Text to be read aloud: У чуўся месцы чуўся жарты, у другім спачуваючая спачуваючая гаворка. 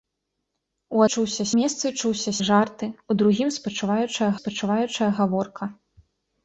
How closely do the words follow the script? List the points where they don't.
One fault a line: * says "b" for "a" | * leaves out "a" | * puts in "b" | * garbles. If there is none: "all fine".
all fine